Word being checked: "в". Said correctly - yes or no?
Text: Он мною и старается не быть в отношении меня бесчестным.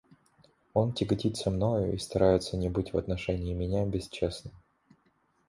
yes